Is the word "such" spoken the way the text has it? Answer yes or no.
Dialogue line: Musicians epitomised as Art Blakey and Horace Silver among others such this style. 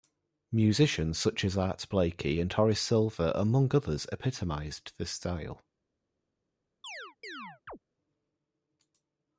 no